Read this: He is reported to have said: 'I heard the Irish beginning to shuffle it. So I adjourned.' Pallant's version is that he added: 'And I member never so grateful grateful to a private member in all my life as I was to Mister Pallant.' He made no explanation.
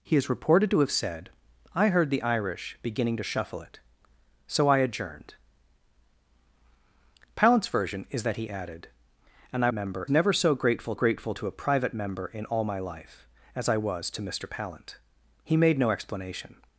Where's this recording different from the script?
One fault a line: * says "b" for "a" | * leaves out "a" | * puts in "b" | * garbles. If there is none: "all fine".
all fine